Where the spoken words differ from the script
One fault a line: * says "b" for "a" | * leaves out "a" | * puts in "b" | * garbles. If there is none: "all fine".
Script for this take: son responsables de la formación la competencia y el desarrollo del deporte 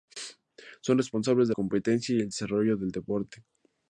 * leaves out "la formación la"